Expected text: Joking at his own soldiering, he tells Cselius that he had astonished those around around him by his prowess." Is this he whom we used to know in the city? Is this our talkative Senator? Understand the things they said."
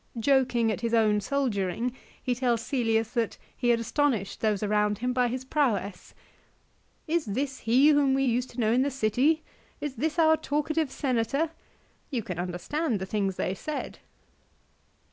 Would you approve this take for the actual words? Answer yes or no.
no